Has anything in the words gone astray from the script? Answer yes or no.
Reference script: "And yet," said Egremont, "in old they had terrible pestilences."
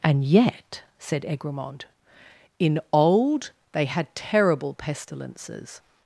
no